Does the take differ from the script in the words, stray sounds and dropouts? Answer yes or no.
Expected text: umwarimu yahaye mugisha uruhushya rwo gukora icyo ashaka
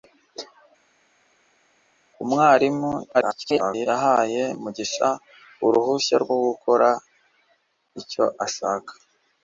yes